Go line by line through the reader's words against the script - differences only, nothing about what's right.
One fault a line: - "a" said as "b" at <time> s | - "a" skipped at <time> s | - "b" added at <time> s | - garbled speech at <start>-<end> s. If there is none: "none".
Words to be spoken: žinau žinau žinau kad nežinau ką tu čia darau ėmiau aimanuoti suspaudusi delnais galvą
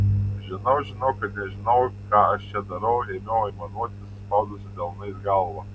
- "žinau" skipped at 1.1 s
- "tu" said as "aš" at 2.4 s